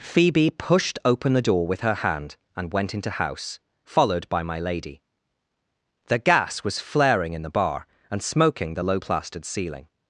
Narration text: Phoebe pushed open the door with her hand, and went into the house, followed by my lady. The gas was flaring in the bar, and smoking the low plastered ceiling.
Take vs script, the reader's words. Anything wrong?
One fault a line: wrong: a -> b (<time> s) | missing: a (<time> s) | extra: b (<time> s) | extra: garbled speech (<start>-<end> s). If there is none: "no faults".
missing: the (3.1 s)